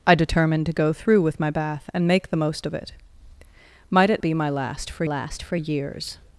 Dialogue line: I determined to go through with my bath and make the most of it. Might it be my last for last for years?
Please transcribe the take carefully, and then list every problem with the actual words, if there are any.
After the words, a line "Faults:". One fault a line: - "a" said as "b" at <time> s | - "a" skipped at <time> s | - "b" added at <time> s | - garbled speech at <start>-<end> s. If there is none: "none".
I determined to go through with my bath and make the most of it. Might it be my last for last for years?
Faults:
none